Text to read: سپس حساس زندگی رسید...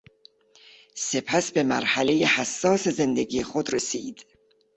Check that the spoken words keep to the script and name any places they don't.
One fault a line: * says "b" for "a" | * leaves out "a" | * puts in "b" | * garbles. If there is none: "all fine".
* puts in "به مرحلهی"
* puts in "خود"